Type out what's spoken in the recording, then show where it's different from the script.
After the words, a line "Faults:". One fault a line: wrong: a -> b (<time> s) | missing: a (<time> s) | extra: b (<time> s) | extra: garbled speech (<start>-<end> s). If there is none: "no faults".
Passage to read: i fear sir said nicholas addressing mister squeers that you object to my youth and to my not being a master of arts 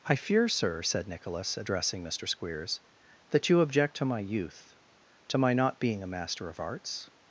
i fear sir said nicholas addressing mister squeers that you object to my youth to my not being a master of arts
Faults:
missing: and (4.8 s)